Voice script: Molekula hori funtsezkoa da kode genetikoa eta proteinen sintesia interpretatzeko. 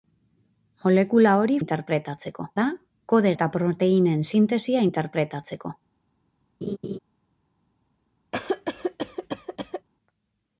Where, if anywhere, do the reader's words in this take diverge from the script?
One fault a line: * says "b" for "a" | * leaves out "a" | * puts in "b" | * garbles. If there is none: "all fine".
* says "interpretatzeko" for "funtsezkoa"
* leaves out "genetikoa"